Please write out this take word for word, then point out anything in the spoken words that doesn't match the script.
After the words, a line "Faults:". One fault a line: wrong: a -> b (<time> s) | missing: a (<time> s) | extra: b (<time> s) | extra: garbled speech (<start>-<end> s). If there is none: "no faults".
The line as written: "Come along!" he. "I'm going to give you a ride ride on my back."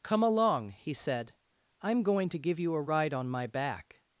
"Come along!" he said. "I'm going to give you a ride on my back."
Faults:
extra: said (0.9 s)
missing: ride (3.1 s)